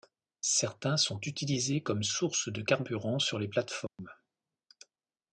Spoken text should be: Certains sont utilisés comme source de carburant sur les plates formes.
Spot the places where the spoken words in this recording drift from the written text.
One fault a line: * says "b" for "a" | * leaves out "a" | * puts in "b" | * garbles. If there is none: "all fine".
all fine